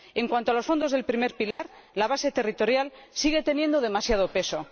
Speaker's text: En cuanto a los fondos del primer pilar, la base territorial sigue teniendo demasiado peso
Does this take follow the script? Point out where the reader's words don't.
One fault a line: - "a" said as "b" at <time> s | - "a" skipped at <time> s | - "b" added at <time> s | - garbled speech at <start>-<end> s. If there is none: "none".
none